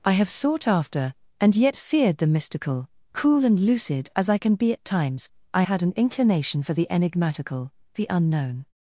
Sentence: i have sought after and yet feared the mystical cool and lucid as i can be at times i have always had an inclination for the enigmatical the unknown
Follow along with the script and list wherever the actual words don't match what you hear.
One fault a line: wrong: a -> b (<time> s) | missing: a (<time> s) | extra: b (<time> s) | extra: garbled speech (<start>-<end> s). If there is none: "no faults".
missing: have always (5.6 s)